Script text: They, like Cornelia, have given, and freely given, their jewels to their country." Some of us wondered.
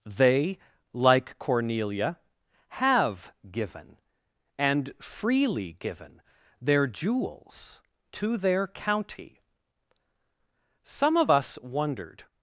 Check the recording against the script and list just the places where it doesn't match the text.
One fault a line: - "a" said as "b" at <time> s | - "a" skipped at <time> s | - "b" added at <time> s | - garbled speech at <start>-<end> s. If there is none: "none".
- "country" said as "county" at 8.7 s